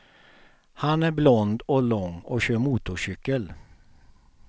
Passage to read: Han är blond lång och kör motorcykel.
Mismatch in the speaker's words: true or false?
true